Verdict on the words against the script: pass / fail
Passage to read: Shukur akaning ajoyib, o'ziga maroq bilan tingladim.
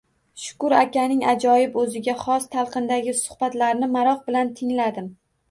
fail